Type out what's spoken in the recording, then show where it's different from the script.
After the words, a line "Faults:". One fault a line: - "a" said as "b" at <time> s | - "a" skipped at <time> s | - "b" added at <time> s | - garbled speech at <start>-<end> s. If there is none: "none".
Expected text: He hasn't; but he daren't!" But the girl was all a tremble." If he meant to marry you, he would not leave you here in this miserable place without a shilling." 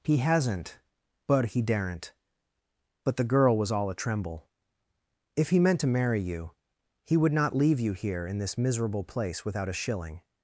He hasn't; but he daren't!" But the girl was all a tremble." If he meant to marry you, he would not leave you here in this miserable place without a shilling."
Faults:
none